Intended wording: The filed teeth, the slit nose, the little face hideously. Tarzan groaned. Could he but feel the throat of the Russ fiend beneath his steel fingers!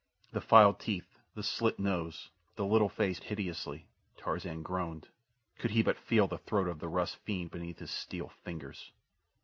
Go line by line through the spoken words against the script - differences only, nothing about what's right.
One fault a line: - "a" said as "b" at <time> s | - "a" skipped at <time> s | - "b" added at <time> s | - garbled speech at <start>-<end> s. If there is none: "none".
none